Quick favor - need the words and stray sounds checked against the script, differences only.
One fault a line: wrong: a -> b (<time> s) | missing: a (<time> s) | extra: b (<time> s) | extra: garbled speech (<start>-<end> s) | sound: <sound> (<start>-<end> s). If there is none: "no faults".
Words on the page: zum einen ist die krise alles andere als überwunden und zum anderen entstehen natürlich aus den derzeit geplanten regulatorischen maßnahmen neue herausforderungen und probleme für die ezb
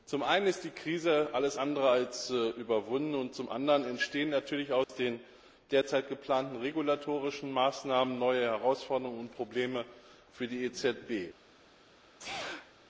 sound: dropout (4.8-4.9 s)
sound: sneeze (12.2-12.7 s)